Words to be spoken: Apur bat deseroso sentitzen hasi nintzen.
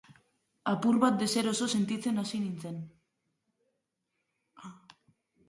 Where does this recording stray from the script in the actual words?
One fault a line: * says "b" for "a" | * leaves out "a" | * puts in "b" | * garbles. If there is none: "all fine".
all fine